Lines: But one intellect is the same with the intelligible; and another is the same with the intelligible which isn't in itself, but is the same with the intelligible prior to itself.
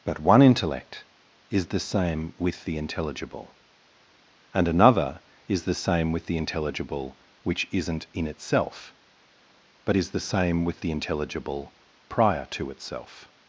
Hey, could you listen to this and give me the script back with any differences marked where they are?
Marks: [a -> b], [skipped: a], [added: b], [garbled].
But one intellect is the same with the intelligible; and another is the same with the intelligible which isn't in itself, but is the same with the intelligible prior to itself.